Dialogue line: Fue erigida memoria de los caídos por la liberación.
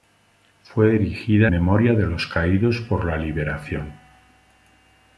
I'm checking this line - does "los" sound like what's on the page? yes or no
yes